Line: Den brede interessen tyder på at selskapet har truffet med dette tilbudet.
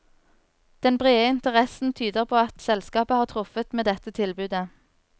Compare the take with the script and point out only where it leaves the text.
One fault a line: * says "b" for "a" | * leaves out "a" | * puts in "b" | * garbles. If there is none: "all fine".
all fine